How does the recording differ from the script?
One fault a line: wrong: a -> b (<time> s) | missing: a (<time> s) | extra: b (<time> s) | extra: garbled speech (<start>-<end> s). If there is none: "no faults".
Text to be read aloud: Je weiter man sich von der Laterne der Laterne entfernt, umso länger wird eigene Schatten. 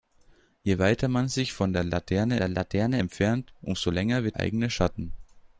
no faults